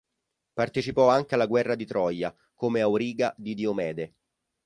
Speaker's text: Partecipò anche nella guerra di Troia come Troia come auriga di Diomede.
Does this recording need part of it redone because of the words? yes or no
yes